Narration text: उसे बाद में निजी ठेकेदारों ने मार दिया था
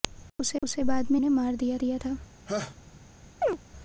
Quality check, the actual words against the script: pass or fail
fail